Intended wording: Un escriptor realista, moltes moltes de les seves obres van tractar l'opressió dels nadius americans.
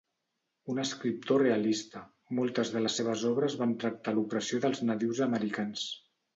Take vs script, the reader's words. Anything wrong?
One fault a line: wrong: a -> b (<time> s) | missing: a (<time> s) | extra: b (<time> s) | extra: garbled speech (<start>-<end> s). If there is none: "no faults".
missing: moltes (2.7 s)